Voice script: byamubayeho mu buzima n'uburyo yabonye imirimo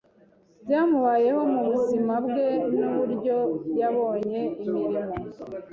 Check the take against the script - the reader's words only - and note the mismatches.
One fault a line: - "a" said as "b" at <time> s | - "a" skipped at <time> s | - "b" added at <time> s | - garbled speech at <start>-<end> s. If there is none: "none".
- "bwe" added at 2.2 s